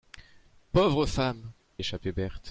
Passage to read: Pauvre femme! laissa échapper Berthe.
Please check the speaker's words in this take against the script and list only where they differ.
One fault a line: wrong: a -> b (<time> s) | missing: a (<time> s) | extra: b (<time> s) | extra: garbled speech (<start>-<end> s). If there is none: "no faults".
missing: laissa (1.5 s)